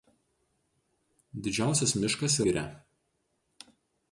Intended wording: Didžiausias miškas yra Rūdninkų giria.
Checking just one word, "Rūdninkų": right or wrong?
wrong